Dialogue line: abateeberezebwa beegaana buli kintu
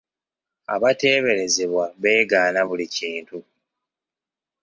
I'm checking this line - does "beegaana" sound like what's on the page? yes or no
yes